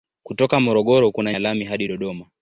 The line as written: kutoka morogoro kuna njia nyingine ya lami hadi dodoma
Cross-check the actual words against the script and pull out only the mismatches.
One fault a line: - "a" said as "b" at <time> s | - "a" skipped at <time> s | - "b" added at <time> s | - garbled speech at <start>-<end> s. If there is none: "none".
- "njia nyingine" skipped at 1.3 s